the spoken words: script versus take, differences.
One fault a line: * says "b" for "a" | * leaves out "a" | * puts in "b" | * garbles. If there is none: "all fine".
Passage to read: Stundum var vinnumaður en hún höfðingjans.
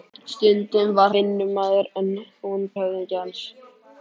all fine